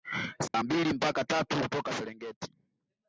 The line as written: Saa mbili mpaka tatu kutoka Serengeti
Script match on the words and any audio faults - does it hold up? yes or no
no